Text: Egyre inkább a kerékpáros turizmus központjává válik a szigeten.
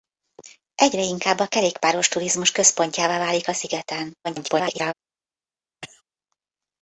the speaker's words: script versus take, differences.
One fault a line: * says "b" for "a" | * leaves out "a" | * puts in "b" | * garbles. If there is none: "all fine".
* garbles